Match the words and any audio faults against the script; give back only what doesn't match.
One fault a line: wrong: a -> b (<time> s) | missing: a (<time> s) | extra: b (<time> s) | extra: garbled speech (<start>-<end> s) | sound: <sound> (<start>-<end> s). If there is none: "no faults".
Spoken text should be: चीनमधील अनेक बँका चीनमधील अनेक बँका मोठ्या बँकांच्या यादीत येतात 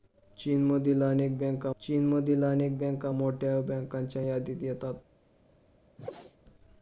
sound: sneeze (6.0-6.4 s)